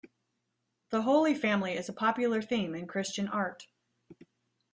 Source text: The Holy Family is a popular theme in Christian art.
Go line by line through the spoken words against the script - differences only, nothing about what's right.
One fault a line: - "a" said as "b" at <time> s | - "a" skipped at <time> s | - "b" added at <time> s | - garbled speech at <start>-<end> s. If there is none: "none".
none